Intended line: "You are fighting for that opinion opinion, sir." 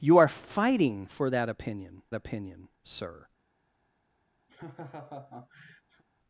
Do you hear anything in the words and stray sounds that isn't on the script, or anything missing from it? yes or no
yes